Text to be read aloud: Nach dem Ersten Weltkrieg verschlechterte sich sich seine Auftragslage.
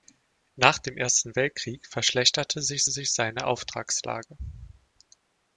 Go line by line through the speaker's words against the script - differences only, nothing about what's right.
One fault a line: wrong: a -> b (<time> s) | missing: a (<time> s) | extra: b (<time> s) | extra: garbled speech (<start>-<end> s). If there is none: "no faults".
no faults